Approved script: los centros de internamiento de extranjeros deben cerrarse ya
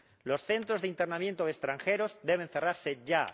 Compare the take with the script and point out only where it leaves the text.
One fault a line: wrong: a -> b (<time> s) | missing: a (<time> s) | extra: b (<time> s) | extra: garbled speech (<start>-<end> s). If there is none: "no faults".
no faults